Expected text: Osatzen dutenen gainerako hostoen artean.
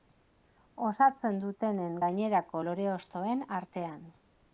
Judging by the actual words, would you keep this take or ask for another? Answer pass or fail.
fail